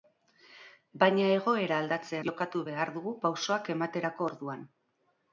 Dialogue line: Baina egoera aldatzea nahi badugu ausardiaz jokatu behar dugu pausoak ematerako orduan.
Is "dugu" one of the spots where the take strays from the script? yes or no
no